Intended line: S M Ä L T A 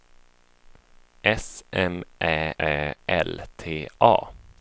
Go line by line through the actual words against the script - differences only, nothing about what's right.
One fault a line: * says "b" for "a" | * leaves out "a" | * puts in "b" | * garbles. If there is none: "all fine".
* puts in "Ä"